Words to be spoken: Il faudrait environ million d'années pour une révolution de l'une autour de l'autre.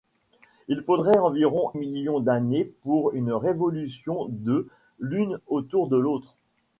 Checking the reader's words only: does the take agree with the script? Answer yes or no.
yes